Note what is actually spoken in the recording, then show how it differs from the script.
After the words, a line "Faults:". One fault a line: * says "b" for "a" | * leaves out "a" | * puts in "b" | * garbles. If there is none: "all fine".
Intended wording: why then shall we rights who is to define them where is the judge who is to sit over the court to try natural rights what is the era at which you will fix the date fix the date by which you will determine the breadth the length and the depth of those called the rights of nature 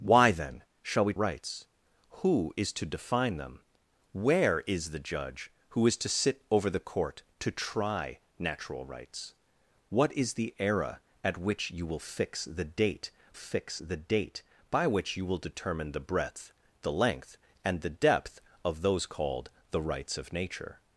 why then shall we rights who is to define them where is the judge who is to sit over the court to try natural rights what is the era at which you will fix the date fix the date by which you will determine the breadth the length and the depth of those called the rights of nature
Faults:
all fine